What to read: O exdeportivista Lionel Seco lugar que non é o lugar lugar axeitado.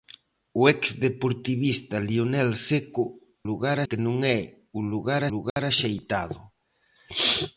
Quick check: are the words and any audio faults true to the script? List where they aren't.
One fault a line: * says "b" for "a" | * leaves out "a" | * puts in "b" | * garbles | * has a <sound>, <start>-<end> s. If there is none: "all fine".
* has a dropout, 5.5-5.6 s